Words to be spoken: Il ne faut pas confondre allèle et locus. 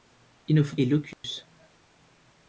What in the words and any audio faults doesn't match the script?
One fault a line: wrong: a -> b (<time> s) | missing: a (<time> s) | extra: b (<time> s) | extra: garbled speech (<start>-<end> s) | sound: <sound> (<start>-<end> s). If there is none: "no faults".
missing: pas confondre allèle (0.8 s)
sound: dropout (1.1-1.2 s)